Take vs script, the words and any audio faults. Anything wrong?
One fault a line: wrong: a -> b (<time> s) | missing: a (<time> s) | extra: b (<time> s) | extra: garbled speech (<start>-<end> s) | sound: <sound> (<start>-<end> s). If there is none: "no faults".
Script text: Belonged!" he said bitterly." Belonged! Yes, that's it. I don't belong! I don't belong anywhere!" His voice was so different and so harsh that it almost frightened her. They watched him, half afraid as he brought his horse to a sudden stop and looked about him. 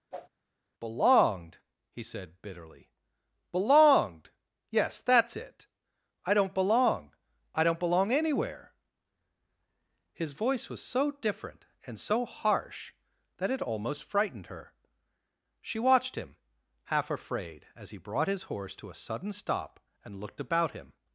sound: whoosh (0.1-0.3 s)
wrong: They -> She (15.6 s)